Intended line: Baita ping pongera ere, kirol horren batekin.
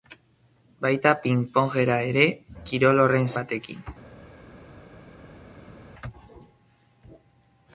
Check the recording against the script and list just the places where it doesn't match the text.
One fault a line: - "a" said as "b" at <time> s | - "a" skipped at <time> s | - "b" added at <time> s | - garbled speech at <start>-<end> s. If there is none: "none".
none